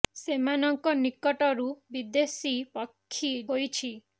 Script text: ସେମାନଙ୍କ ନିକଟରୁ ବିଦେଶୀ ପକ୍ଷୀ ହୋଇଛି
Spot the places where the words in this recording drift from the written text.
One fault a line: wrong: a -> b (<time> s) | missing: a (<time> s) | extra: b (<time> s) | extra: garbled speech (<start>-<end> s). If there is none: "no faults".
no faults